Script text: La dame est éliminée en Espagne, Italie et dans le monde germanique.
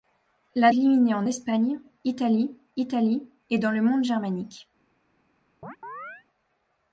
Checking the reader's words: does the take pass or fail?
fail